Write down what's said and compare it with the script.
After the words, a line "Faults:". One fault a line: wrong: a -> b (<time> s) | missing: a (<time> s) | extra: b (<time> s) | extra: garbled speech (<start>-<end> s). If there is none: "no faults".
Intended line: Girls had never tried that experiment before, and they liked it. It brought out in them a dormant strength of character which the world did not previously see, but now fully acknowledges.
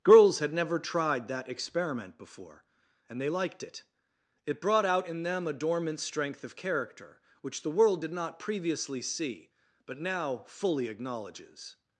Girls had never tried that experiment before, and they liked it. It brought out in them a dormant strength of character which the world did not previously see, but now fully acknowledges.
Faults:
no faults